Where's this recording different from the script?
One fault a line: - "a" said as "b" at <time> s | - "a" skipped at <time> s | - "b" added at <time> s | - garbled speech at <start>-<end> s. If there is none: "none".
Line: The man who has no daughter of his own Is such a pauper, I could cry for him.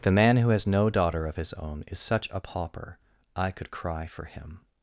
none